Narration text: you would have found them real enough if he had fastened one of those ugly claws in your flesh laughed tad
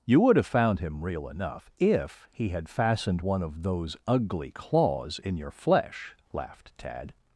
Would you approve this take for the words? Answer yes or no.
no